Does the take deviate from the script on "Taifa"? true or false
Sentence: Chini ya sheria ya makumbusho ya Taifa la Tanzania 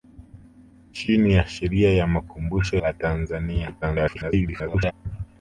true